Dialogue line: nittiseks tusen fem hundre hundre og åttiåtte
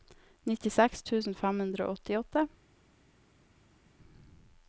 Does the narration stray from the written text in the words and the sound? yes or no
yes